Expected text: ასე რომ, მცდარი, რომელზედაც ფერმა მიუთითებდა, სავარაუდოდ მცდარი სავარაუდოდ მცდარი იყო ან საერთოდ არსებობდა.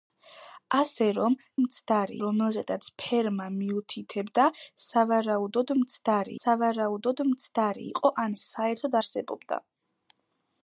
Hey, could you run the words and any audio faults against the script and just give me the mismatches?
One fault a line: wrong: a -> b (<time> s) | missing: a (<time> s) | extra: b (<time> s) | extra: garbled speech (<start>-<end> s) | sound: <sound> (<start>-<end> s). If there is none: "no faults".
no faults